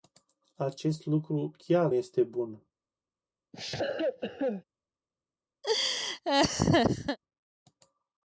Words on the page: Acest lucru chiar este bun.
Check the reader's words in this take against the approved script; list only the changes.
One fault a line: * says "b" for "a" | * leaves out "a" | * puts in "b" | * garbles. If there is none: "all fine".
all fine